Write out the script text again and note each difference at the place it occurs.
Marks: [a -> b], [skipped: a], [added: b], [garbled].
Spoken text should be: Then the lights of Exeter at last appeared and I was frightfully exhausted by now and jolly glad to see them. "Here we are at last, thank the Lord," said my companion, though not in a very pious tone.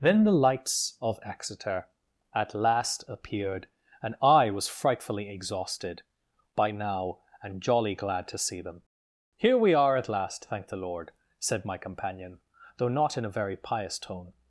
Then the lights of Exeter at last appeared and I was frightfully exhausted by now and jolly glad to see them. "Here we are at last, thank the Lord," said my companion, though not in a very pious tone.